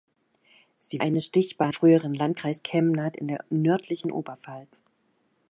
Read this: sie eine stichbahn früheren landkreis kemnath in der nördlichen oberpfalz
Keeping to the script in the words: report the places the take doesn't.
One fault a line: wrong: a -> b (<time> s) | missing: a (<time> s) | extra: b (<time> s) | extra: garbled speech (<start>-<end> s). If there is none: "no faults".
no faults